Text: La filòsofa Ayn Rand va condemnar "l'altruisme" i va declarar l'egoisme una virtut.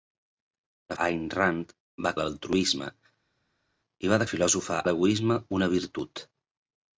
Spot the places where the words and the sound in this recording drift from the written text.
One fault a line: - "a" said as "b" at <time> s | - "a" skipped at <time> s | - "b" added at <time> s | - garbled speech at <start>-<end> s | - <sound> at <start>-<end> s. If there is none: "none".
- "filòsofa" skipped at 0.9 s
- "condemnar" skipped at 2.1 s
- "declarar" said as "filòsofa" at 4.3 s